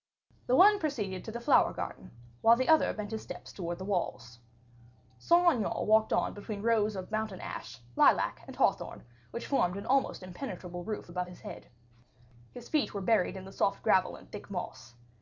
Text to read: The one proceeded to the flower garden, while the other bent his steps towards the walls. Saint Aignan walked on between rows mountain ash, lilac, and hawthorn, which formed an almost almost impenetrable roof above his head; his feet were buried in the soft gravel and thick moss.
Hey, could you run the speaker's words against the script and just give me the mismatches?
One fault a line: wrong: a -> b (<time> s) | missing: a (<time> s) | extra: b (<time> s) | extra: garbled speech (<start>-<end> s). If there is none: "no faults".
extra: of (7.0 s)
missing: almost (10.2 s)